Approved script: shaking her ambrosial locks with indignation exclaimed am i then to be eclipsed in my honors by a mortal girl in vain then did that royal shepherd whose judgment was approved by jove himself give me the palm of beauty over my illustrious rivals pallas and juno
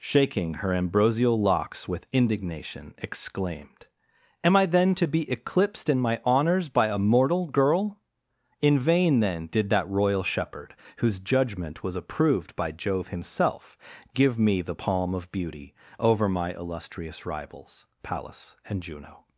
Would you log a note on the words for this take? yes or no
no